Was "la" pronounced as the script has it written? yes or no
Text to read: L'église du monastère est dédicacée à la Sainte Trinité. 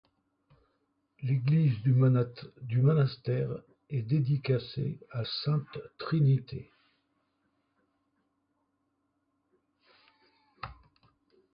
no